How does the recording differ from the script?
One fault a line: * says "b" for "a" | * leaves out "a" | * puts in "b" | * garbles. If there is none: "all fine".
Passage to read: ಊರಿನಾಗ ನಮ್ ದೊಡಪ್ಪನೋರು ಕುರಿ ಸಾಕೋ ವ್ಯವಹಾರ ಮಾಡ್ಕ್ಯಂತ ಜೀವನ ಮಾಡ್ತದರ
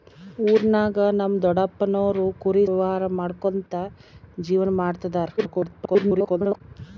* leaves out "ಸಾಕೋ"
* garbles